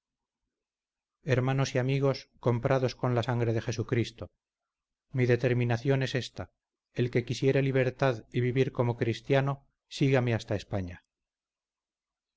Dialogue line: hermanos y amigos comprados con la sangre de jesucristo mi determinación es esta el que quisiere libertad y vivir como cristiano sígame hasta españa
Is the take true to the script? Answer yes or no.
yes